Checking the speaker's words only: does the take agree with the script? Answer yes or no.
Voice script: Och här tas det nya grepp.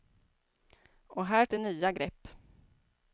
no